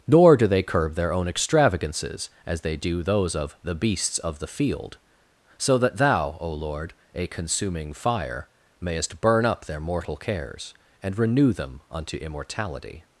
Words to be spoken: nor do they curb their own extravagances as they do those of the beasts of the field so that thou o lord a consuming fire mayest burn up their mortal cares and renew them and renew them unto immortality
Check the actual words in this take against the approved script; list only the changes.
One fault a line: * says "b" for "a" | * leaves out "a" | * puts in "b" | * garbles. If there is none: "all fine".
* leaves out "and renew them"